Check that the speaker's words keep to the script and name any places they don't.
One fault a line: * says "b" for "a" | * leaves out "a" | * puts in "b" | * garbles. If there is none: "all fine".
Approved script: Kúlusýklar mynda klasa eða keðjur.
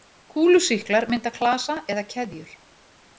all fine